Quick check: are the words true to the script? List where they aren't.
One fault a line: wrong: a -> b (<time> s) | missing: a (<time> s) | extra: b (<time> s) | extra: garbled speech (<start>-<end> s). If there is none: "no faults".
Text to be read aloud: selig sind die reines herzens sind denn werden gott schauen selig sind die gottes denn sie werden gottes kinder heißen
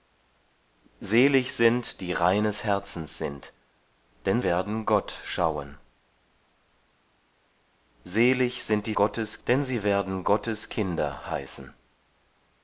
no faults